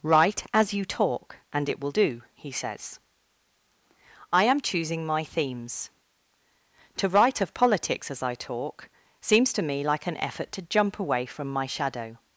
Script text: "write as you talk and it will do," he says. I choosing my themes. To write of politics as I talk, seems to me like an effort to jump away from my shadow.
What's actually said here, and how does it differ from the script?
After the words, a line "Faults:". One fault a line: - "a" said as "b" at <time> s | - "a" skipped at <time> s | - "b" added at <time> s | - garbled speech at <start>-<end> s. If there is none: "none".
"write as you talk and it will do," he says. I am choosing my themes. To write of politics as I talk, seems to me like an effort to jump away from my shadow.
Faults:
- "am" added at 4.4 s